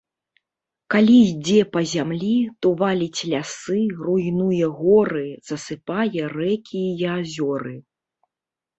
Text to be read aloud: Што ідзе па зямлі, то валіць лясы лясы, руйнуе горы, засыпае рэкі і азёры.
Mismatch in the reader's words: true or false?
true